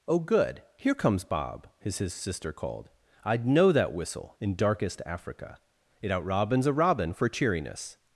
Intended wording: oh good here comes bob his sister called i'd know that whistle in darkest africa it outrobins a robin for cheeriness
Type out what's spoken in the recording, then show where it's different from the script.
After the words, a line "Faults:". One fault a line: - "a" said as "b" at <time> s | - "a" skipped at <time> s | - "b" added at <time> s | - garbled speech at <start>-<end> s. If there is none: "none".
oh good here comes bob his his sister called i'd know that whistle in darkest africa it outrobins a robin for cheeriness
Faults:
- "his" added at 2.0 s